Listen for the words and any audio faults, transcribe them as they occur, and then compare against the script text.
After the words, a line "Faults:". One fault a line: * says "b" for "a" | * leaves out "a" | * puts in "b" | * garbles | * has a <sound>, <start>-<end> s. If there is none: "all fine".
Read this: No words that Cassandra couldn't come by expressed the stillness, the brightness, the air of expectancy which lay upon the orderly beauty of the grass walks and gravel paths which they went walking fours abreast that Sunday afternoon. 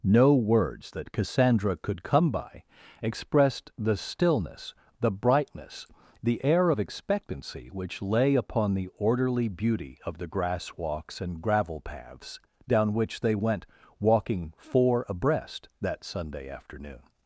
No words that Cassandra could come by expressed the stillness, the brightness, the air of expectancy which lay upon the orderly beauty of the grass walks and gravel paths down which they went walking four abreast that Sunday afternoon.
Faults:
* says "could" for "couldn't"
* puts in "down"
* says "four" for "fours"